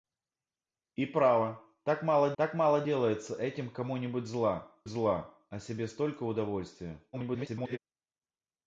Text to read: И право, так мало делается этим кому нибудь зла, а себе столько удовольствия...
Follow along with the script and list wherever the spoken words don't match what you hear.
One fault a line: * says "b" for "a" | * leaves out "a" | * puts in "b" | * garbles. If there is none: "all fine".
* puts in "так мало"
* puts in "зла"
* garbles